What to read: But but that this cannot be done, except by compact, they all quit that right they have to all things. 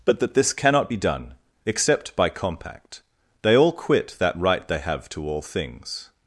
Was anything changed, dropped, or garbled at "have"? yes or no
no